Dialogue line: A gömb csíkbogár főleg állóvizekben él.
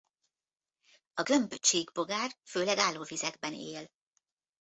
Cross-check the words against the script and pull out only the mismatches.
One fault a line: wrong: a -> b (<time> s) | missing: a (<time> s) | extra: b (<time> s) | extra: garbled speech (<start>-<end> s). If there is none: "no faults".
no faults